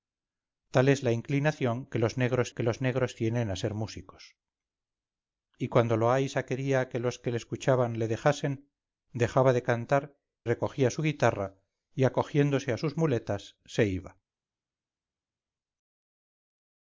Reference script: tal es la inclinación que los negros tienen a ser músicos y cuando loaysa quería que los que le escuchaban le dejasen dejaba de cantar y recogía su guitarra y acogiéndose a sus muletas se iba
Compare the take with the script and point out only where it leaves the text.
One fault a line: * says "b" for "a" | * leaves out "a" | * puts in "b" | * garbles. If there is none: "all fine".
* puts in "que los negros"
* leaves out "y"